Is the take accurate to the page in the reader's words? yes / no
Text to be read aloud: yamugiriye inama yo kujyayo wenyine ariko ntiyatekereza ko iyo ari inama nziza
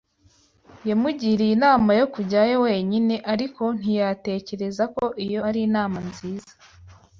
yes